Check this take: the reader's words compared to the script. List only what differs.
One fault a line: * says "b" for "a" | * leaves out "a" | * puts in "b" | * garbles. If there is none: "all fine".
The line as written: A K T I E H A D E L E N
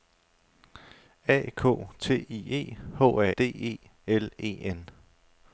all fine